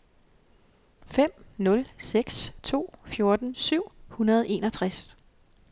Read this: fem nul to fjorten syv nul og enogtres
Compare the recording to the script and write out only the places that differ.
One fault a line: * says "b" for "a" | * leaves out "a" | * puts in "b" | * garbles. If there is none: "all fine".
* puts in "seks"
* says "hundrede" for "nul"